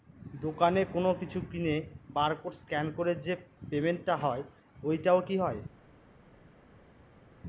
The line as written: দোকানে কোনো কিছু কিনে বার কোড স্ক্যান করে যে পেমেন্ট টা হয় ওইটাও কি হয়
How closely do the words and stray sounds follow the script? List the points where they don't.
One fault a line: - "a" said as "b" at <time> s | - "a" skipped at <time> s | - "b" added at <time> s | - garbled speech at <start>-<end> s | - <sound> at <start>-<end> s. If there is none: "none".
none